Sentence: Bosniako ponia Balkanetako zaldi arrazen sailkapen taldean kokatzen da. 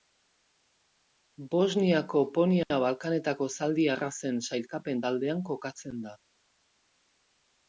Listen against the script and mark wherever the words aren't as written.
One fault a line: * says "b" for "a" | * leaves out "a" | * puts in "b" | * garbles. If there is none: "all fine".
all fine